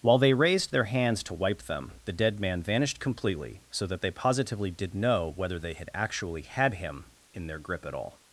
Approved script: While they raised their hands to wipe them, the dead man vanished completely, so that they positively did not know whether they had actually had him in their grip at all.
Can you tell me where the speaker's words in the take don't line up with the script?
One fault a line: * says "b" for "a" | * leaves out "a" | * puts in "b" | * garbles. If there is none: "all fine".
* leaves out "not"